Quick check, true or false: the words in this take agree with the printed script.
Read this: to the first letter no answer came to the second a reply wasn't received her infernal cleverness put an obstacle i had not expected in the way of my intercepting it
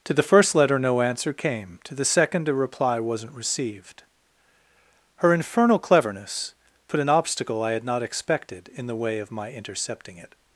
true